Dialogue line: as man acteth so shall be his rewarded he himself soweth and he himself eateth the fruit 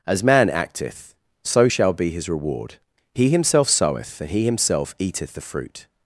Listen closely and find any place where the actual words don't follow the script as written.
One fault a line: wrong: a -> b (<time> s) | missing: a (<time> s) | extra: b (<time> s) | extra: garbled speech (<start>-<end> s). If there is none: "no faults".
wrong: rewarded -> reward (2.3 s)